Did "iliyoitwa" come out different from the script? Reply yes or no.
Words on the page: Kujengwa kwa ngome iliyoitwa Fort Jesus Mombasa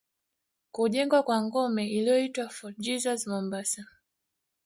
no